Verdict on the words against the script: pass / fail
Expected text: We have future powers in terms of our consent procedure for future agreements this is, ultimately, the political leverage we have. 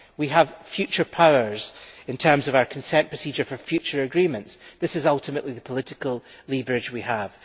pass